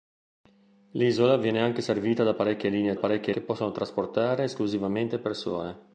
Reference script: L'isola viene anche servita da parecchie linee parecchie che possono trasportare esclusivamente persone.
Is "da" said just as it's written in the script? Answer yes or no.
yes